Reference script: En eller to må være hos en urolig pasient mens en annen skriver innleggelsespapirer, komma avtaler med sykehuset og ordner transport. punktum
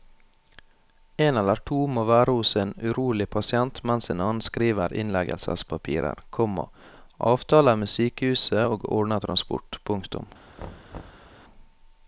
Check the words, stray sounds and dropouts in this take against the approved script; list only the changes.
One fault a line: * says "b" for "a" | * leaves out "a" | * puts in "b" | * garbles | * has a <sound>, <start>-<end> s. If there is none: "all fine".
* has a thud, 10.6-11.3 s